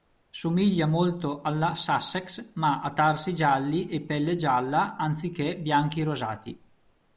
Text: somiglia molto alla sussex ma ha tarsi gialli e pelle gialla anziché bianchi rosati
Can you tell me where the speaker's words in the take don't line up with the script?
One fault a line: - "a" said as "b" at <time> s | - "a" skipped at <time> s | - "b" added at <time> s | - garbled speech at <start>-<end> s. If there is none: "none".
none